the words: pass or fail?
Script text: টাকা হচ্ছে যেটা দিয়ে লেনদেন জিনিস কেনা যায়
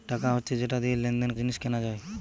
pass